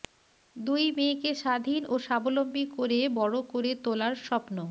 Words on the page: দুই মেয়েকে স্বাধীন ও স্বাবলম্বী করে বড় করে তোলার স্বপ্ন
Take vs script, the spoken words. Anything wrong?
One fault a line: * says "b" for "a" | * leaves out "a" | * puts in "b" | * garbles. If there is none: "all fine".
all fine